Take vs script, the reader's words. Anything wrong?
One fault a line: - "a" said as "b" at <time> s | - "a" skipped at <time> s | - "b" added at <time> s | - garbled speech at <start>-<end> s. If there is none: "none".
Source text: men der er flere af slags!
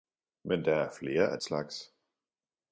none